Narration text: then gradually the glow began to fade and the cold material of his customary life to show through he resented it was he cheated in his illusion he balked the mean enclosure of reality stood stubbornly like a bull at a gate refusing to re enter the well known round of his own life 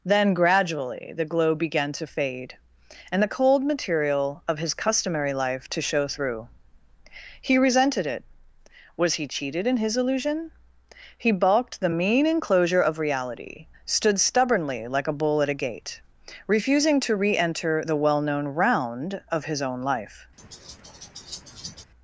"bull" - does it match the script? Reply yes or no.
yes